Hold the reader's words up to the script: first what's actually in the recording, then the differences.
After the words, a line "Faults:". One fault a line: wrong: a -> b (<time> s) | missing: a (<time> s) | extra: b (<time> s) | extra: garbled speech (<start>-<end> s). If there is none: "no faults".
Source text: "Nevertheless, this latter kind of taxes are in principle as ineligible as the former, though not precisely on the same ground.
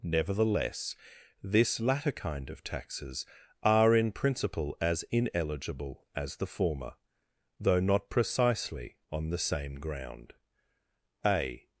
"Nevertheless, this latter kind of taxes are in principle as ineligible as the former, though not precisely on the same ground. A
Faults:
extra: A (11.2 s)